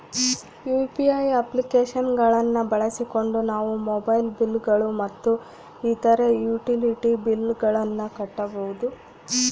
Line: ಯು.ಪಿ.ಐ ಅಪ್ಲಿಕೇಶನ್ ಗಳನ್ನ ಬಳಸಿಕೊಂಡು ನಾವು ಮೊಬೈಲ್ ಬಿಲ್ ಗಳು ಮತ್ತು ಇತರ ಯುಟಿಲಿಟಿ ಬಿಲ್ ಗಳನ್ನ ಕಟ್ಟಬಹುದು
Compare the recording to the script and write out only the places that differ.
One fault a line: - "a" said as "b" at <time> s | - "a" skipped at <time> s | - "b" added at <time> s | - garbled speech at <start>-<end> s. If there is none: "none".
none